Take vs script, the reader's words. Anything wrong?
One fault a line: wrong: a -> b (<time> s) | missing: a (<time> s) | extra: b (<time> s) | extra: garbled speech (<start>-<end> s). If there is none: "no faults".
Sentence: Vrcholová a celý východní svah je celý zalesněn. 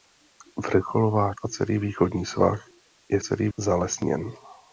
no faults